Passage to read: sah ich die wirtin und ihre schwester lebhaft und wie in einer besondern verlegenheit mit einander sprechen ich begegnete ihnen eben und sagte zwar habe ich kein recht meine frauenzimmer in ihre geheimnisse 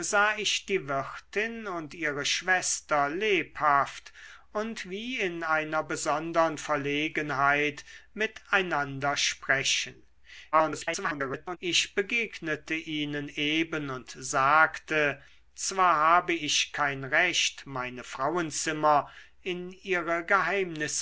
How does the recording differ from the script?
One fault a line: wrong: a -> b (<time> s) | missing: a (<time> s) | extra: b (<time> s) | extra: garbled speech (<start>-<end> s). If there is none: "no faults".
extra: garbled speech (10.5-11.6 s)